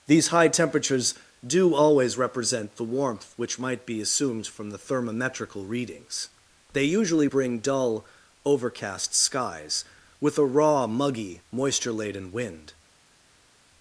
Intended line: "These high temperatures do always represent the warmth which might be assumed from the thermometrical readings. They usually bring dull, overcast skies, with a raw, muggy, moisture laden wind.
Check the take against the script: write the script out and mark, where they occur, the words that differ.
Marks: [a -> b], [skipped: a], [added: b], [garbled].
"These high temperatures do always represent the warmth which might be assumed from the thermometrical readings. They usually bring dull, overcast skies, with a raw, muggy, moisture laden wind.